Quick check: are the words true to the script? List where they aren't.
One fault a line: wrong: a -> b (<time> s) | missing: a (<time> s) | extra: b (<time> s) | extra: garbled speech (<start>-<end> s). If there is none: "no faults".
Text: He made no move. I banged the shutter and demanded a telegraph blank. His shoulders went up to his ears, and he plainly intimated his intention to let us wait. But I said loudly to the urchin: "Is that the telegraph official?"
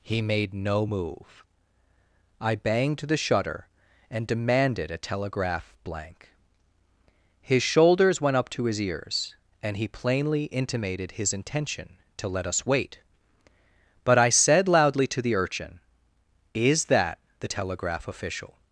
no faults